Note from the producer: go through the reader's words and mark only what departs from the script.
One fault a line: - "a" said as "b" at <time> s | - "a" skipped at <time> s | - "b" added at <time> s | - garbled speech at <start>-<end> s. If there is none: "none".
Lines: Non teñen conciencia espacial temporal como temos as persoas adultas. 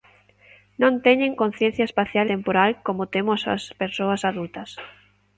none